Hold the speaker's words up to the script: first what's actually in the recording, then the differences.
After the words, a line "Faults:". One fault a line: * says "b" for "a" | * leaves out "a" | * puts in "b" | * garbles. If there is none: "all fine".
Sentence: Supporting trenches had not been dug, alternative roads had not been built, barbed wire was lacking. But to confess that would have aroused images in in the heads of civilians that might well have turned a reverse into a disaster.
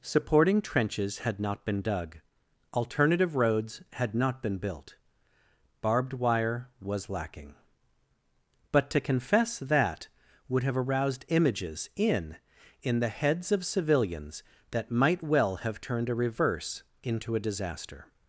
Supporting trenches had not been dug, alternative roads had not been built, barbed wire was lacking. But to confess that would have aroused images in in the heads of civilians that might well have turned a reverse into a disaster.
Faults:
all fine